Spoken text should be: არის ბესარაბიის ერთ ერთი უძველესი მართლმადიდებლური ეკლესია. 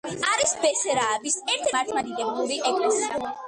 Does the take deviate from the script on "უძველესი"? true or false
true